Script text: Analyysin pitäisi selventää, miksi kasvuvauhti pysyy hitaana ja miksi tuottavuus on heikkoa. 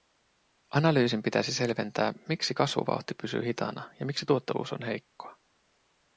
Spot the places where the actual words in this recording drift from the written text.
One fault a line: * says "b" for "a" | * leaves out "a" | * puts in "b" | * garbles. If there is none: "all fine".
all fine